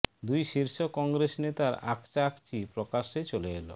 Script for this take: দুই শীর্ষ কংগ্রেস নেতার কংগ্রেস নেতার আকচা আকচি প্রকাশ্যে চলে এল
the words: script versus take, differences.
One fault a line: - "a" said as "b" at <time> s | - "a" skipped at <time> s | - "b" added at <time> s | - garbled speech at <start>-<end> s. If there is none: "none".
- "কংগ্রেস নেতার" skipped at 1.7 s